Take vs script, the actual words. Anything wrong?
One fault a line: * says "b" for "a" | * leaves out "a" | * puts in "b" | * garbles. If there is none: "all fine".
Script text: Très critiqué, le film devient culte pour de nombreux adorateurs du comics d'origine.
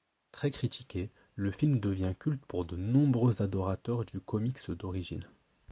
all fine